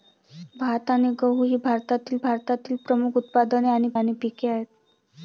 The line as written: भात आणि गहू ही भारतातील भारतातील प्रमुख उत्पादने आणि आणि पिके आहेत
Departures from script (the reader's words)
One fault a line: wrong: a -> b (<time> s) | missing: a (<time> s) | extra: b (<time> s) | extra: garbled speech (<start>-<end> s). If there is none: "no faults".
no faults